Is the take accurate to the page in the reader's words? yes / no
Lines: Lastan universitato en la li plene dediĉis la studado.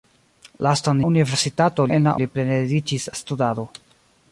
yes